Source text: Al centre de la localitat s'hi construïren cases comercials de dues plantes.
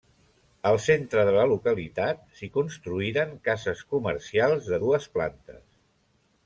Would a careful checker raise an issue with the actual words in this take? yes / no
no